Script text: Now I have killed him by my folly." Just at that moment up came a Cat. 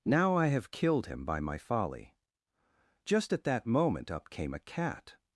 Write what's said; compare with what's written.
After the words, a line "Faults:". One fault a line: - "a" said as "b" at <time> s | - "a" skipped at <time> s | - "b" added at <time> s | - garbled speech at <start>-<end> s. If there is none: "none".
Now I have killed him by my folly." Just at that moment up came a Cat.
Faults:
none